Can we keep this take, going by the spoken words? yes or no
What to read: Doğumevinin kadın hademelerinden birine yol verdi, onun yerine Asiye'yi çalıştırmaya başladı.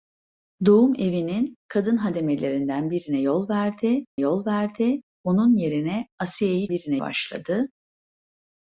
no